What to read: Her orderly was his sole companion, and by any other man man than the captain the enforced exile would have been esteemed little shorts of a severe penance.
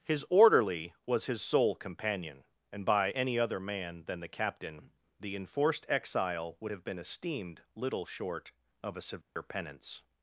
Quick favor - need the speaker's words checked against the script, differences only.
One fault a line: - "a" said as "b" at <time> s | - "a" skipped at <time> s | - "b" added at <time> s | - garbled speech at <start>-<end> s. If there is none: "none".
- "Her" said as "His" at 0.0 s
- "man" skipped at 4.0 s
- "shorts" said as "short" at 8.0 s